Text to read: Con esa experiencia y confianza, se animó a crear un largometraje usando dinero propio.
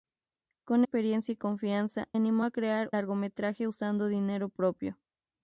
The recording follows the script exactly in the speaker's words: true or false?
false